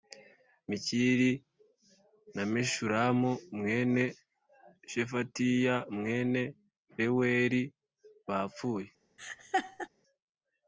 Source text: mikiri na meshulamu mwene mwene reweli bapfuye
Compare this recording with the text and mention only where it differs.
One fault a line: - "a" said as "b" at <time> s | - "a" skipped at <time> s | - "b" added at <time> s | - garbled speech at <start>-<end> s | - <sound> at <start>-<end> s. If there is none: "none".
- "shefatiya" added at 4.9 s
- laugh at 9.2-9.9 s